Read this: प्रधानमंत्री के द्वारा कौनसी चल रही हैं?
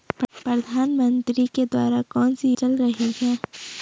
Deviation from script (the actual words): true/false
false